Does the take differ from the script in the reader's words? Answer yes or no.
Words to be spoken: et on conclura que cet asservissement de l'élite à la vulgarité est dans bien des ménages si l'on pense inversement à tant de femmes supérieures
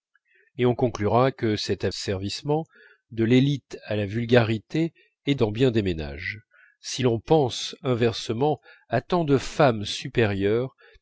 no